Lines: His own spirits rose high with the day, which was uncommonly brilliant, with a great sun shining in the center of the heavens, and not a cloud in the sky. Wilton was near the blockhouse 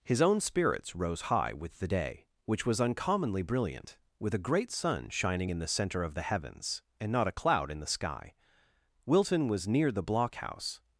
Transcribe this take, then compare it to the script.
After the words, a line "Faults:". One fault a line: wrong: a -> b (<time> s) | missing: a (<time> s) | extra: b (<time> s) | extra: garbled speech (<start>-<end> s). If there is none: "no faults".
His own spirits rose high with the day, which was uncommonly brilliant, with a great sun shining in the center of the heavens, and not a cloud in the sky. Wilton was near the blockhouse
Faults:
no faults